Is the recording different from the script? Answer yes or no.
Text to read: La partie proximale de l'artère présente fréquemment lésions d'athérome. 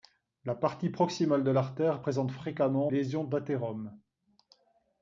no